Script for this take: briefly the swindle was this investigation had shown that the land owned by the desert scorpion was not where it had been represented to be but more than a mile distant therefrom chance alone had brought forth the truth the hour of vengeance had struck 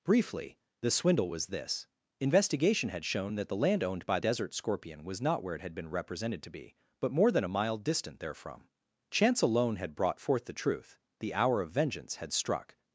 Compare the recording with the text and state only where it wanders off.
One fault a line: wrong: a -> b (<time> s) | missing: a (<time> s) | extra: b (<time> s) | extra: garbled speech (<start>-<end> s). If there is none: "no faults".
missing: the (4.2 s)